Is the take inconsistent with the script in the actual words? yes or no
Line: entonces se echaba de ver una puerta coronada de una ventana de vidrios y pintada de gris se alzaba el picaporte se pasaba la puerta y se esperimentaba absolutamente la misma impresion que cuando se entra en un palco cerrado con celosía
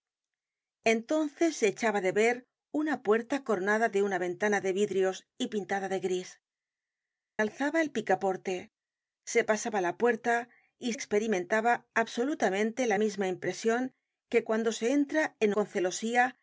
yes